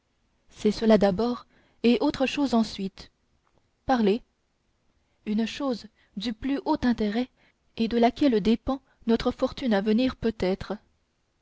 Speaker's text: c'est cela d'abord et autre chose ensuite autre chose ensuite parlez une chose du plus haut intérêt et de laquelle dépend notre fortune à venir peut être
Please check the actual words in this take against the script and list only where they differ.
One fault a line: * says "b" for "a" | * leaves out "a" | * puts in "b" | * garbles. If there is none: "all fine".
* leaves out "autre chose ensuite"